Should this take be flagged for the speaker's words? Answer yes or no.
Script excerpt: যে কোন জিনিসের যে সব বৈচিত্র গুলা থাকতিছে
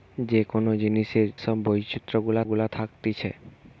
yes